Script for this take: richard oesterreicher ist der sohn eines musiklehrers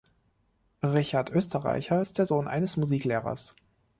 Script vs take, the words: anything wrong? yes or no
no